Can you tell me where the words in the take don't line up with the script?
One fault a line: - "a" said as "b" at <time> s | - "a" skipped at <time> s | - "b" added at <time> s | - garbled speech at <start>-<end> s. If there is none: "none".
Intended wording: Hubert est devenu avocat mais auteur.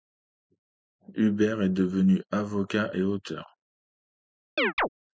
- "mais" said as "et" at 2.9 s